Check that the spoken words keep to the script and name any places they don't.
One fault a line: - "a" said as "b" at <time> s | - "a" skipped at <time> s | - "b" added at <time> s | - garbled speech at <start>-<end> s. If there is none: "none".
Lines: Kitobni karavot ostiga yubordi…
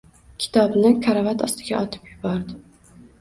- "otib" added at 1.8 s